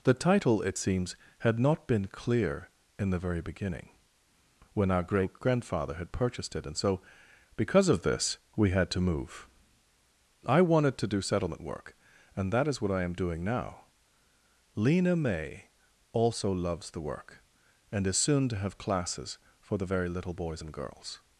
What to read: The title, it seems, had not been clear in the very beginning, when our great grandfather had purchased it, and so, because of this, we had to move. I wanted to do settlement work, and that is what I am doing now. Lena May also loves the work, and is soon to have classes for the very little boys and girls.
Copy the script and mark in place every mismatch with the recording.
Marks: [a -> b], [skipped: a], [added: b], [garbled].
The title, it seems, had not been clear in the very beginning, when our great grandfather had purchased it, and so, because of this, we had to move. I wanted to do settlement work, and that is what I am doing now. Lena May also loves the work, and is soon to have classes for the very little boys and girls.